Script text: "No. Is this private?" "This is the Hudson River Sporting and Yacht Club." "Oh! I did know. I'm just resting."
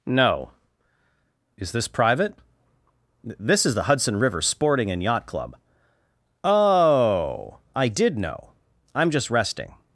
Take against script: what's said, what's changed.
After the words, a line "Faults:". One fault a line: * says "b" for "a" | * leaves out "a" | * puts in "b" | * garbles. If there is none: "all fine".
"No. Is this private?" "This is the Hudson River Sporting and Yacht Club." "Oh! I did know. I'm just resting."
Faults:
all fine